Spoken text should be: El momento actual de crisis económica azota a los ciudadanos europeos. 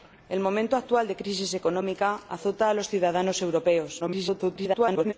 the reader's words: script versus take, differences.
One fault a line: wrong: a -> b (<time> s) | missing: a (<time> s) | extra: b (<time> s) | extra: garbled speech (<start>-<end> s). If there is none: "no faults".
extra: garbled speech (4.0-5.1 s)